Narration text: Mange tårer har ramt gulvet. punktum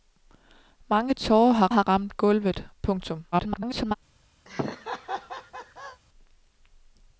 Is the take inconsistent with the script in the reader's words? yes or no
yes